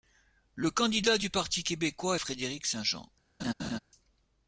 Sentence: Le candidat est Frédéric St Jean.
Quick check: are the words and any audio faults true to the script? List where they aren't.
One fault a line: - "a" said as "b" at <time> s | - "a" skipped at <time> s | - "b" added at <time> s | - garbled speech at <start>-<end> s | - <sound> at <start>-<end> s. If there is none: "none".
- "du Parti québécois" added at 1.2 s
- laugh at 3.4-3.8 s